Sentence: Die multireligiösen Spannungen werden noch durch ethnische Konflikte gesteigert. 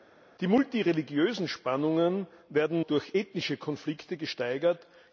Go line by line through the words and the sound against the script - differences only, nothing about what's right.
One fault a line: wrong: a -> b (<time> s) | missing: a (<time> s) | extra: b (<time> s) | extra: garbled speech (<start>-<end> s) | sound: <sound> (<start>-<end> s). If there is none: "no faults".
missing: noch (2.8 s)